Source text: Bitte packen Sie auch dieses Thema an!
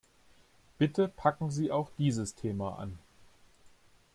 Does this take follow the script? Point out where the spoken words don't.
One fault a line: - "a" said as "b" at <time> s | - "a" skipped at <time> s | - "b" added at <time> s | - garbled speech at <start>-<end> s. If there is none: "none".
none